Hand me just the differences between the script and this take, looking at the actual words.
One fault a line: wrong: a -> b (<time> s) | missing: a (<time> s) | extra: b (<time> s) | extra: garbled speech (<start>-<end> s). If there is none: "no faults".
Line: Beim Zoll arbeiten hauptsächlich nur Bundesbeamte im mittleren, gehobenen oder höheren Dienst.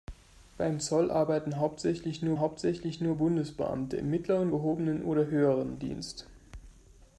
extra: hauptsächlich nur (2.4 s)